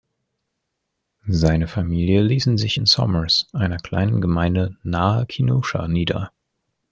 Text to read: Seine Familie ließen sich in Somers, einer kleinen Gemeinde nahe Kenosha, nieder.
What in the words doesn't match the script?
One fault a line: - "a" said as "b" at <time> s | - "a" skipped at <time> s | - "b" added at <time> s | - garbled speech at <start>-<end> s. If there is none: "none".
none